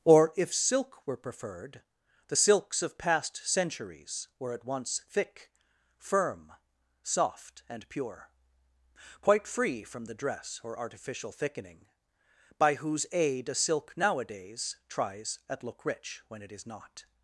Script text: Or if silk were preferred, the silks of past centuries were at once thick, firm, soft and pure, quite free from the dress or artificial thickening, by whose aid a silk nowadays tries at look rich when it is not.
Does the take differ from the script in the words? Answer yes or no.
no